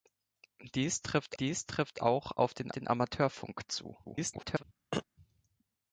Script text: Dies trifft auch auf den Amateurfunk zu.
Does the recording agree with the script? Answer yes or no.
no